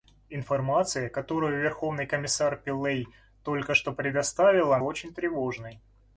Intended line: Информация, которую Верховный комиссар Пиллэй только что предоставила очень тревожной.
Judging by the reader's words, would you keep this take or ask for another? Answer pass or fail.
pass